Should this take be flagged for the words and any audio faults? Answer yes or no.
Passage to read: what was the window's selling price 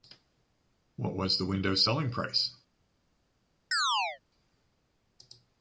yes